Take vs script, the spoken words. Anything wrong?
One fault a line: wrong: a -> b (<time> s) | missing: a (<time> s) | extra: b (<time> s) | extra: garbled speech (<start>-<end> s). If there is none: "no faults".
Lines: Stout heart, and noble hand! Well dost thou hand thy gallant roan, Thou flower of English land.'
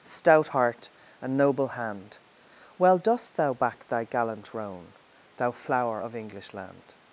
wrong: hand -> back (3.5 s)